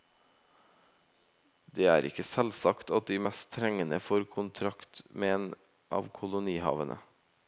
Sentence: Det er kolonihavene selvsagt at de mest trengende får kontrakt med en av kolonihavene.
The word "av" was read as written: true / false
true